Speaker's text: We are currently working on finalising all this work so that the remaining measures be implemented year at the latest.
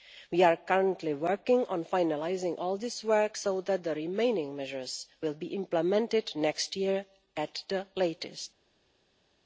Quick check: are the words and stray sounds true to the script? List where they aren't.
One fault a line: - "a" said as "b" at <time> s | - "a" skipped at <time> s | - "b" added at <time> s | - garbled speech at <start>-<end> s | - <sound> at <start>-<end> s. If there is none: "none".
- "will" added at 5.2 s
- "next" added at 6.4 s